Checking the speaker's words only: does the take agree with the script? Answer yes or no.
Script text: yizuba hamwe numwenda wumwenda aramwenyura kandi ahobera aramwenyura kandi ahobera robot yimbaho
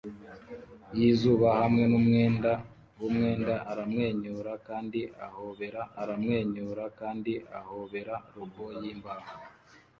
yes